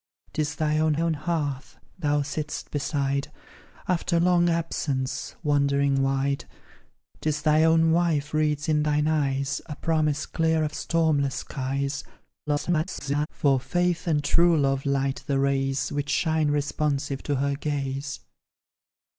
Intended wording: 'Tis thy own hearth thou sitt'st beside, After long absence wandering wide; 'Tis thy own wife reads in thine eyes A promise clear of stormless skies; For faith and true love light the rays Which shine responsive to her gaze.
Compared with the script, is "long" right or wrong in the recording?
right